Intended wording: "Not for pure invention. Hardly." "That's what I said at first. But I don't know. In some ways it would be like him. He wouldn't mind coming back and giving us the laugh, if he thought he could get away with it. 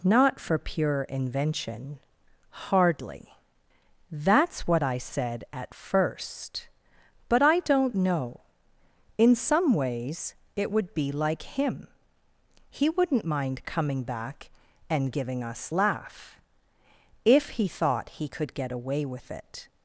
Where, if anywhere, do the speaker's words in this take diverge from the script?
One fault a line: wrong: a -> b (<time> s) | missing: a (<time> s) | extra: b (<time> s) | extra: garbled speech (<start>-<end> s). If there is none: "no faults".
missing: the (15.7 s)